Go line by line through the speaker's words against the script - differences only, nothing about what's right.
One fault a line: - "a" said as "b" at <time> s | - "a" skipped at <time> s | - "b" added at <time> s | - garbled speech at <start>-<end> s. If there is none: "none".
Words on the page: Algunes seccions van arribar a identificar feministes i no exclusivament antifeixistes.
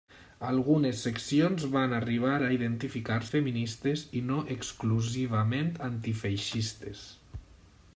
none